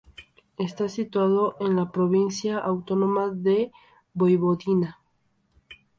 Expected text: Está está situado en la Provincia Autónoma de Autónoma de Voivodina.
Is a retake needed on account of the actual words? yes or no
yes